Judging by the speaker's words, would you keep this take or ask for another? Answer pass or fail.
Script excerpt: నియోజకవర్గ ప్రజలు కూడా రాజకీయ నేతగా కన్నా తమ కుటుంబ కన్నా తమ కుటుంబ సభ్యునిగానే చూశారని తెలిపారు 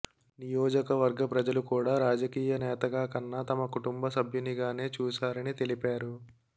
fail